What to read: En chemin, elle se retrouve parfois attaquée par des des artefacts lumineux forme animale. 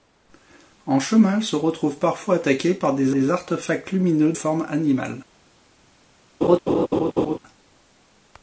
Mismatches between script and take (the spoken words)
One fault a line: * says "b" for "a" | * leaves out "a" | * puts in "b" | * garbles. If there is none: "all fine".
all fine